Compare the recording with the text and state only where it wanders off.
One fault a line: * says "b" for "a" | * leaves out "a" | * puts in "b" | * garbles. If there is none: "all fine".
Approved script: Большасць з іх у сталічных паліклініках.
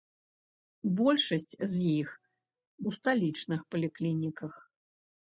all fine